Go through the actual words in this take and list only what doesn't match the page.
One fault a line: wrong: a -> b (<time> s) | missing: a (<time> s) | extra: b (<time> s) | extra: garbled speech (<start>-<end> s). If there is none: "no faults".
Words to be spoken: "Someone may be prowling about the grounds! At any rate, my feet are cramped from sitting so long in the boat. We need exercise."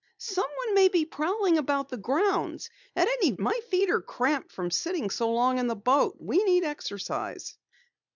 missing: rate (3.3 s)